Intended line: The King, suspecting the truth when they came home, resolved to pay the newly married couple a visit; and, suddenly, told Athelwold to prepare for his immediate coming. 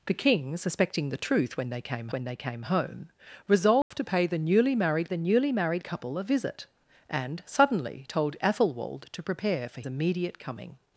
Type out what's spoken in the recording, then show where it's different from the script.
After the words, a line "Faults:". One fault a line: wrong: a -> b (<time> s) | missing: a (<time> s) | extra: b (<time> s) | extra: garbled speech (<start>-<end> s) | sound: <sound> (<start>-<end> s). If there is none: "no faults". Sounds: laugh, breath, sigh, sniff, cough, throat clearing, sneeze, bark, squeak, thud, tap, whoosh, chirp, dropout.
The King, suspecting the truth when they came when they came home, resolved to pay the newly married the newly married couple a visit; and, suddenly, told Athelwold to prepare for immediate coming.
Faults:
extra: when they came (2.1 s)
sound: dropout (3.8-3.9 s)
extra: the newly married (5.1 s)
missing: his (9.8 s)